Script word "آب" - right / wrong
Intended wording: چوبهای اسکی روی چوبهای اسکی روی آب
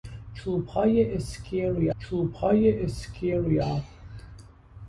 right